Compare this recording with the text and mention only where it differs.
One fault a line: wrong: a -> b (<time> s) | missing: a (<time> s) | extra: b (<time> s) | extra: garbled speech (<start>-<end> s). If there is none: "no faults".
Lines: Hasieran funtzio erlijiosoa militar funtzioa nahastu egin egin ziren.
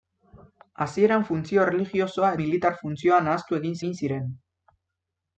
no faults